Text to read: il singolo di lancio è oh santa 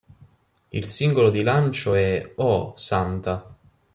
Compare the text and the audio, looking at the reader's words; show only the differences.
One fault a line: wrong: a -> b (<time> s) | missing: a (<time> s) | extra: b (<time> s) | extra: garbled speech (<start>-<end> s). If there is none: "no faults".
no faults